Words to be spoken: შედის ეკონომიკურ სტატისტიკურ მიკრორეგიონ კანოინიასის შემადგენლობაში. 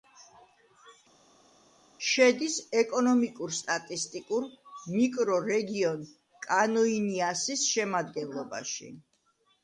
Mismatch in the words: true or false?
false